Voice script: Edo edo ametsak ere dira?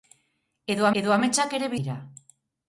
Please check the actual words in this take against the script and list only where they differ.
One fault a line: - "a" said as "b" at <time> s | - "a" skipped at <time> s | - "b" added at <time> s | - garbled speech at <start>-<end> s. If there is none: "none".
none